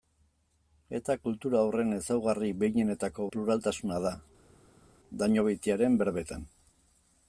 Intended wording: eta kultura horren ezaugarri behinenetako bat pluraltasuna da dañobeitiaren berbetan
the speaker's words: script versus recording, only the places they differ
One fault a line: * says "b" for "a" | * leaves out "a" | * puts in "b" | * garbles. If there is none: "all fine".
* leaves out "bat"